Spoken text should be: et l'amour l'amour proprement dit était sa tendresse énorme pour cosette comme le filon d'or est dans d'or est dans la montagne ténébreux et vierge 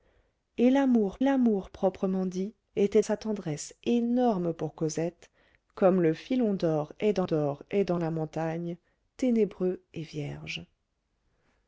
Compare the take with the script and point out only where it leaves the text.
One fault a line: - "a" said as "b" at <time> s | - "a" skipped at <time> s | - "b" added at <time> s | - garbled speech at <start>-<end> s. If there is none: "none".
none